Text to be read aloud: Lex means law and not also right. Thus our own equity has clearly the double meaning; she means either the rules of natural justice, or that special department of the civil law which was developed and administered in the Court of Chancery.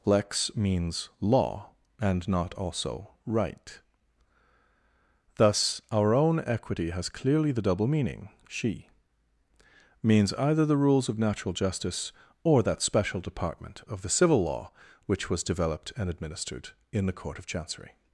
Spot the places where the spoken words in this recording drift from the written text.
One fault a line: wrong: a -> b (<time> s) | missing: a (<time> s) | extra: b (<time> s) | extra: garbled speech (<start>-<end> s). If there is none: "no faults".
no faults